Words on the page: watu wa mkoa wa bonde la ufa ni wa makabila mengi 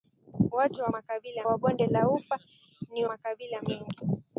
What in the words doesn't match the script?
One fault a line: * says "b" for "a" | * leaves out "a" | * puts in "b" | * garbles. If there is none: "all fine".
* says "makabila" for "mkoa"
* leaves out "wa"